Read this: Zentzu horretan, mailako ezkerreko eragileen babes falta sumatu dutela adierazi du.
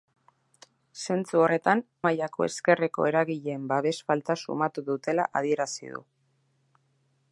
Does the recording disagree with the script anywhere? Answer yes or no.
no